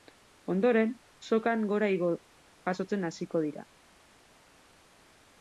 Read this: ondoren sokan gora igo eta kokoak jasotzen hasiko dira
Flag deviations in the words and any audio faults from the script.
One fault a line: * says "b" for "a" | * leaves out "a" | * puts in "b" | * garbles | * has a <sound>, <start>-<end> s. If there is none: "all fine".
* leaves out "eta kokoak"